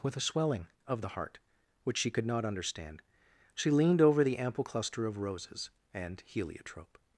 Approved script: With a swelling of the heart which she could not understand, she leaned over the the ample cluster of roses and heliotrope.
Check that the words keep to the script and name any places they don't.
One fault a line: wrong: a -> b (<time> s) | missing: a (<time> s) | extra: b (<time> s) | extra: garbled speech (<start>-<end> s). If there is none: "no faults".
missing: the (4.4 s)